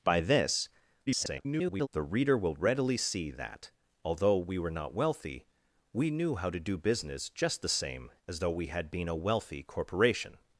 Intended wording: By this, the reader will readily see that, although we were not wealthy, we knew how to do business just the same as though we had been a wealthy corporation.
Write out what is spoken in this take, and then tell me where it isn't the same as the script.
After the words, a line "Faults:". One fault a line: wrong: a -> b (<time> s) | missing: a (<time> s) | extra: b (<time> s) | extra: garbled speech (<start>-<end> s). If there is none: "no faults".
By this, [garbled] the reader will readily see that, although we were not wealthy, we knew how to do business just the same as though we had been a wealthy corporation.
Faults:
extra: garbled speech (1.1-1.9 s)